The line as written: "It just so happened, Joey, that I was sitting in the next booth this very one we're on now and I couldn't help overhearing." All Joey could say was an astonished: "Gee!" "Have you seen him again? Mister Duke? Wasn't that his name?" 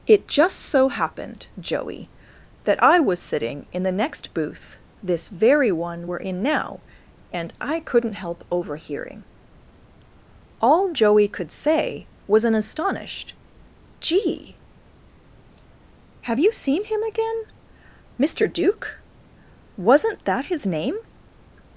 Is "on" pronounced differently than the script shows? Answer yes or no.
yes